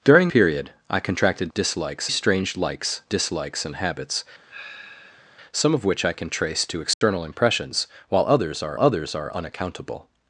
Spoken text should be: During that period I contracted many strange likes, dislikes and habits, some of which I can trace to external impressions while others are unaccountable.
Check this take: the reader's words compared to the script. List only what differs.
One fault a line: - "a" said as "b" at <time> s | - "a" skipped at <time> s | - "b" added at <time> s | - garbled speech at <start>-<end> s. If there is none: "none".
- "that" skipped at 0.3 s
- "many" said as "dislikes" at 1.5 s
- "others are" added at 8.8 s